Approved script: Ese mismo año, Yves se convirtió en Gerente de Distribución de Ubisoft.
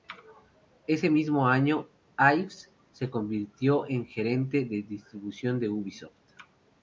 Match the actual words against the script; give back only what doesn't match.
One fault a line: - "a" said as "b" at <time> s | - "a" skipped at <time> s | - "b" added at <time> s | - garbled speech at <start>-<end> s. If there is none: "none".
none